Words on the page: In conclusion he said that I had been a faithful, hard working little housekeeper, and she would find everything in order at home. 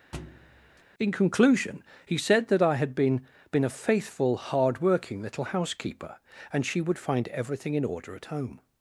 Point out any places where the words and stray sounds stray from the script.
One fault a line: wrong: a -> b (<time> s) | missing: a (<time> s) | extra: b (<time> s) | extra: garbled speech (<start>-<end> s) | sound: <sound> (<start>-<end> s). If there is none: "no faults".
sound: thud (0.1-0.8 s)
extra: been (3.5 s)